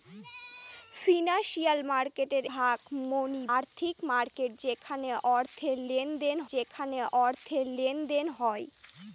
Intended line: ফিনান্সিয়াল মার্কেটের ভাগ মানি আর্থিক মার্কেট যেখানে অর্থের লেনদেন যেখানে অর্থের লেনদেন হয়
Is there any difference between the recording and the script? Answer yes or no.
no